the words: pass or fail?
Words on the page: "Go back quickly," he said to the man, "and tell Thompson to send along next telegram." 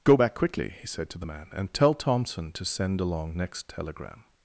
pass